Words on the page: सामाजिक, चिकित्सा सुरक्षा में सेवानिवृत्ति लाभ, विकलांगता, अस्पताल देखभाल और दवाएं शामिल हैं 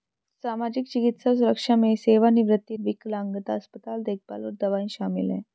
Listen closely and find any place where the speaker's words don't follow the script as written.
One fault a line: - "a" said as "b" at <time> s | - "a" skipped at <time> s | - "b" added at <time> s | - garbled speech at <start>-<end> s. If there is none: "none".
- "लाभ" skipped at 2.8 s